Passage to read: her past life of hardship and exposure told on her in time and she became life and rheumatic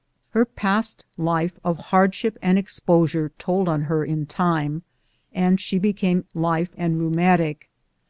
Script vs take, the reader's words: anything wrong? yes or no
no